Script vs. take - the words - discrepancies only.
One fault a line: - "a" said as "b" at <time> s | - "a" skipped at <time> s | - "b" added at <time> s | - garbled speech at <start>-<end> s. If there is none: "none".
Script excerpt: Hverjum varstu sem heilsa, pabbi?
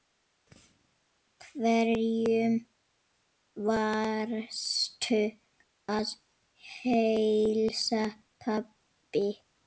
- "sem" said as "að" at 6.0 s